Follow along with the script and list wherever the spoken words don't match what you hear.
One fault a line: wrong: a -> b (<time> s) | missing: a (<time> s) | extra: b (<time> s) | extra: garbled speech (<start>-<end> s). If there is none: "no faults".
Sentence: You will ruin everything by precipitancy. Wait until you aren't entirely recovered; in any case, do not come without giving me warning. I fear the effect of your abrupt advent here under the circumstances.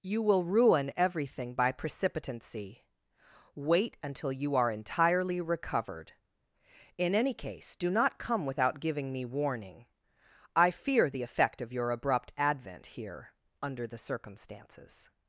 wrong: aren't -> are (4.5 s)